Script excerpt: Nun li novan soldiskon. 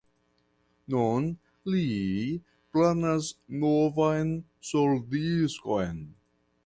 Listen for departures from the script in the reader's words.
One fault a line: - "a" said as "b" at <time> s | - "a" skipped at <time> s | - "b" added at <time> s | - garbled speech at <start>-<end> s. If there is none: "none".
- "planas" added at 2.8 s